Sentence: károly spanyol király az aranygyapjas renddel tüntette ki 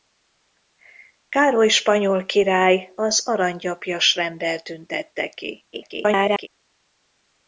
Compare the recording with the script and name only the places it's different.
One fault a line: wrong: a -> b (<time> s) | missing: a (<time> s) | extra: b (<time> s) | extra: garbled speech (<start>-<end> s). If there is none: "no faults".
extra: garbled speech (5.7-6.5 s)